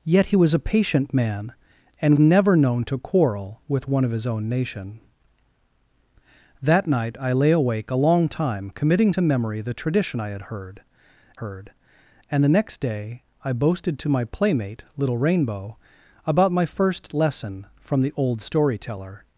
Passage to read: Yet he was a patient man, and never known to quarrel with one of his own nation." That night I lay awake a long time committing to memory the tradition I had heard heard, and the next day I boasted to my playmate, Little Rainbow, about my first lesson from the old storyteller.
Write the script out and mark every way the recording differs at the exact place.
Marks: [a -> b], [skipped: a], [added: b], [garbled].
Yet he was a patient man, and never known to quarrel with one of his own nation." That night I lay awake a long time committing to memory the tradition I had heard heard, and the next day I boasted to my playmate, Little Rainbow, about my first lesson from the old storyteller.